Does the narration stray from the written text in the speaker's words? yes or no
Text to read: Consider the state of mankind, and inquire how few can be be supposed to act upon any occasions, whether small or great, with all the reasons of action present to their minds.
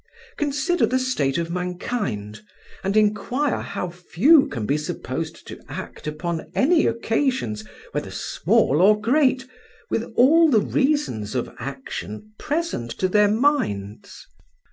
yes